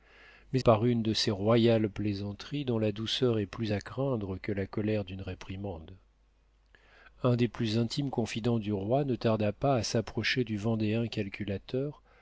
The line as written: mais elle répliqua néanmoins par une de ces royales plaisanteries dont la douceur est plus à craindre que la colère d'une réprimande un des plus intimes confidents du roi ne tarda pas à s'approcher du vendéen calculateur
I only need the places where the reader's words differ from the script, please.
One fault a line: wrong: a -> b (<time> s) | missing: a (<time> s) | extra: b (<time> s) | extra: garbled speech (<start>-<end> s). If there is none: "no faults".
missing: elle répliqua néanmoins (0.6 s)